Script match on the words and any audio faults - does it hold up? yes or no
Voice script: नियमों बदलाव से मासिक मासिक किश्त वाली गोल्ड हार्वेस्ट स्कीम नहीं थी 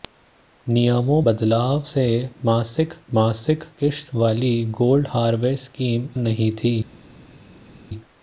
yes